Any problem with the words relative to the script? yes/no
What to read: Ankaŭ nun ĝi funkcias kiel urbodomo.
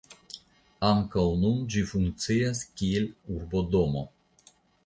no